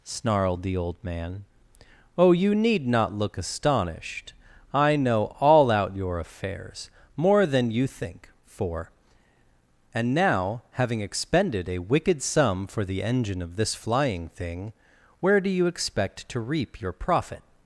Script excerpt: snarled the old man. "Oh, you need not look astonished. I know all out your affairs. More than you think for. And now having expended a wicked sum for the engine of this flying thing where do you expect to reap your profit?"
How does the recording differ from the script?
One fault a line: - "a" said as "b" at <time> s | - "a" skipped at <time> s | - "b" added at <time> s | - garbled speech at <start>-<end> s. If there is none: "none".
none